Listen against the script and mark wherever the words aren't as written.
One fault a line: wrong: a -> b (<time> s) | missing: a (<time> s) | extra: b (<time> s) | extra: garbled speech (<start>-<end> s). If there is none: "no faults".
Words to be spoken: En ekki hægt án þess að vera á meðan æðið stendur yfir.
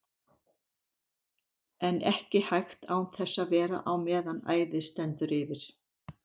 no faults